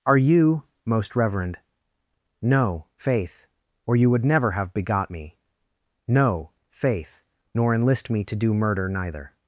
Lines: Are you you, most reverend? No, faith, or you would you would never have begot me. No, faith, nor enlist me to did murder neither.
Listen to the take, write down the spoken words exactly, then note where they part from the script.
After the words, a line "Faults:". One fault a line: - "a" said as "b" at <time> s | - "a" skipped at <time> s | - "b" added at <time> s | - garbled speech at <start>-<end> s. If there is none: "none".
Are you, most reverend? No, faith, or you would never have begot me. No, faith, nor enlist me to do murder neither.
Faults:
- "you" skipped at 0.6 s
- "you would" skipped at 4.2 s
- "did" said as "do" at 8.4 s